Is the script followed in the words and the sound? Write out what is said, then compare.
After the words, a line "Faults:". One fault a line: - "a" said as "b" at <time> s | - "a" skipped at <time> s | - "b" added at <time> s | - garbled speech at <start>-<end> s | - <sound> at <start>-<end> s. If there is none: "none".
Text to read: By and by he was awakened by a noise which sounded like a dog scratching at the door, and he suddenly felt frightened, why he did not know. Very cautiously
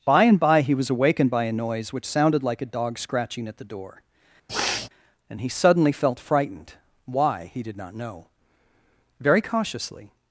By and by he was awakened by a noise which sounded like a dog scratching at the door, and he suddenly felt frightened, why he did not know. Very cautiously
Faults:
- sniff at 4.5-4.9 s